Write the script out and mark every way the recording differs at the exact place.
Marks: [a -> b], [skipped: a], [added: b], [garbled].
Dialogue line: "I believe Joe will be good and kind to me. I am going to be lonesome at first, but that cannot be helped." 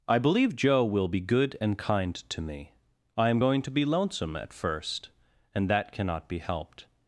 "I believe Joe will be good and kind to me. I am going to be lonesome at first, [but -> and] that cannot be helped."